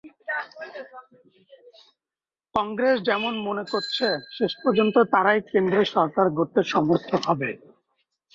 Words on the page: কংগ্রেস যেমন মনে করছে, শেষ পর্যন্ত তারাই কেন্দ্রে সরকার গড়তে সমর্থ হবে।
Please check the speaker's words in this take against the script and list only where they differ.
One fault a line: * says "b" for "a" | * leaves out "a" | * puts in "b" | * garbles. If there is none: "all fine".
all fine